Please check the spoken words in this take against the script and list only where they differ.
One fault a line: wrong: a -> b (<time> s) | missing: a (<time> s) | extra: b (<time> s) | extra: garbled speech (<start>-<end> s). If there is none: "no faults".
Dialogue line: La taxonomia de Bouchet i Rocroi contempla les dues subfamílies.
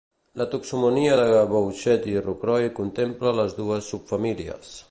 no faults